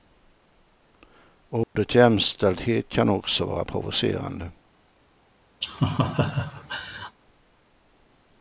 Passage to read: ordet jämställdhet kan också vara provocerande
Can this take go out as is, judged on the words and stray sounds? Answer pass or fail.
fail